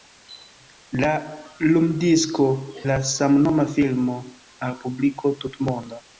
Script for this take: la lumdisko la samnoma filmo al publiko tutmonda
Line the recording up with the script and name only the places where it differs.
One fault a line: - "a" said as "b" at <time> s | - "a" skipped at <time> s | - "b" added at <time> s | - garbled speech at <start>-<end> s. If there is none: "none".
none